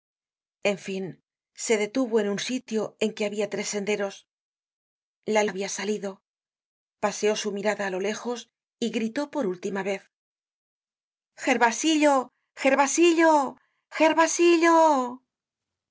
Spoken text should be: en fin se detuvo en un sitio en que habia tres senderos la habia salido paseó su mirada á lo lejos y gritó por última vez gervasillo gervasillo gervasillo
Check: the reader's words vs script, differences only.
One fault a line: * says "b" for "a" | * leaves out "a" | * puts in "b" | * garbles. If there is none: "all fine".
all fine